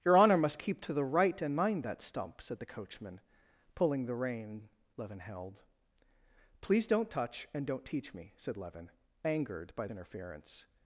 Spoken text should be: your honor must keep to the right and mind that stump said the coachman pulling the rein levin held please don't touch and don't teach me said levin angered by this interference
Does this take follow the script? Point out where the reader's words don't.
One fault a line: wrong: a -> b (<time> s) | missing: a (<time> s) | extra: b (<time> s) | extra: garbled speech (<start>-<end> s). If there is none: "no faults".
missing: this (9.9 s)